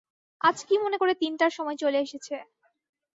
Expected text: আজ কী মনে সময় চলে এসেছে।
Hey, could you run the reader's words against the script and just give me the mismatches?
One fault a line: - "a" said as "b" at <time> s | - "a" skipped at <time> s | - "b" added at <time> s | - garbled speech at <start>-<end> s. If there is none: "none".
- "করে তিনটার" added at 0.9 s